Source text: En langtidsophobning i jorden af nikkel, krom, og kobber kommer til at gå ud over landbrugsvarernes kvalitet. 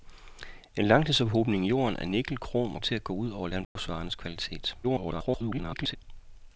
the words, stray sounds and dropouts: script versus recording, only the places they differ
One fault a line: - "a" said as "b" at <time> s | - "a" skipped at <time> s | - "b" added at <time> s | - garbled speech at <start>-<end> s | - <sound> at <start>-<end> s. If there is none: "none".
- "kobber kommer" skipped at 2.8 s
- dropout at 3.6-3.8 s
- garbled speech at 4.8-6.0 s